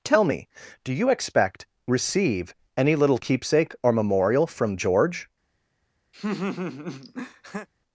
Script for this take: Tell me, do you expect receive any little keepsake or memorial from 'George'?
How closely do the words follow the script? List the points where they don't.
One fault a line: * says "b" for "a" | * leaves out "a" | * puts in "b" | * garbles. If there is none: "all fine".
all fine